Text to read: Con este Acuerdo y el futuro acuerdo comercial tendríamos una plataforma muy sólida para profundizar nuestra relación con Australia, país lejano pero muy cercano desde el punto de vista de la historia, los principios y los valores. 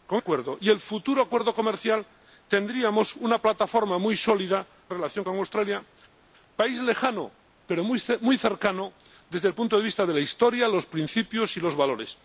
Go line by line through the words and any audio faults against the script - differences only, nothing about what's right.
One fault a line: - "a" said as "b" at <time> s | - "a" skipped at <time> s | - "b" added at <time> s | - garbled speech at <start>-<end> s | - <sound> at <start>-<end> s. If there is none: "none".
- "este" skipped at 0.2 s
- "para profundizar nuestra" skipped at 4.7 s